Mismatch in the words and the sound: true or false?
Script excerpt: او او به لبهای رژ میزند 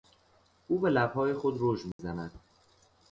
true